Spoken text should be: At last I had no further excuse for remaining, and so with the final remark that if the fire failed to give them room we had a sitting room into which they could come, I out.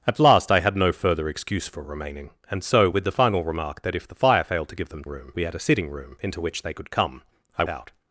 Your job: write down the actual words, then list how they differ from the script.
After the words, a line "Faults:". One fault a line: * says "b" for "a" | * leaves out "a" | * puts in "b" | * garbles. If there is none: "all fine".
At last I had no further excuse for remaining, and so with the final remark that if the fire failed to give them room we had a sitting room into which they could come, I out.
Faults:
all fine